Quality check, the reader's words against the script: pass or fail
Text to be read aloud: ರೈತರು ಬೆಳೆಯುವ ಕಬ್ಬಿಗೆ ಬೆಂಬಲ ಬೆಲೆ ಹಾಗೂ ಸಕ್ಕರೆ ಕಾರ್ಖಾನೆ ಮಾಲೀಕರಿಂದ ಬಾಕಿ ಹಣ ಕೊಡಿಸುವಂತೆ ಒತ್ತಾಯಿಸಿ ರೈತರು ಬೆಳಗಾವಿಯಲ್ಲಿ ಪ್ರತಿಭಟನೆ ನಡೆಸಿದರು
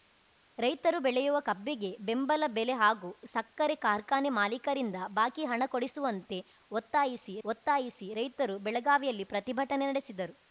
fail